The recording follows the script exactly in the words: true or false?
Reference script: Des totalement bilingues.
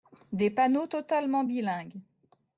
false